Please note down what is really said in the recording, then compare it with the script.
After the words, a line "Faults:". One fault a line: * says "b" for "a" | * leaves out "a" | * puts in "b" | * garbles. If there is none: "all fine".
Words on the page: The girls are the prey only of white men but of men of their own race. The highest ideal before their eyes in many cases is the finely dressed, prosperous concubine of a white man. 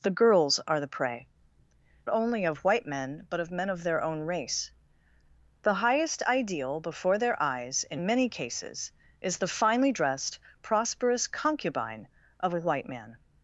The girls are the prey only of white men but of men of their own race. The highest ideal before their eyes in many cases is the finely dressed, prosperous concubine of a white man.
Faults:
all fine